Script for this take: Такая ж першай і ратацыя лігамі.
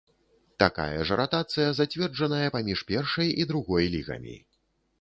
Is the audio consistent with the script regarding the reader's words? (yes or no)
no